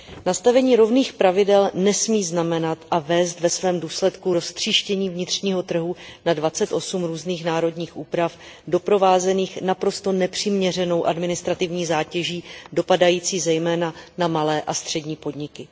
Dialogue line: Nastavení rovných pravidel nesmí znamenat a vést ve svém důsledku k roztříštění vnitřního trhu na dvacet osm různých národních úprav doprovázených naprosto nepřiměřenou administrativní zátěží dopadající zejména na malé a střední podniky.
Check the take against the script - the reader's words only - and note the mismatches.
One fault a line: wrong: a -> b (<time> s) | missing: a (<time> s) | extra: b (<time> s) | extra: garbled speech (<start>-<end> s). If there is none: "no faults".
no faults